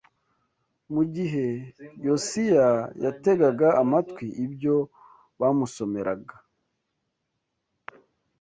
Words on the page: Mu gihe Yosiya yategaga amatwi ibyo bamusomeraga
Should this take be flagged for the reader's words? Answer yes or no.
no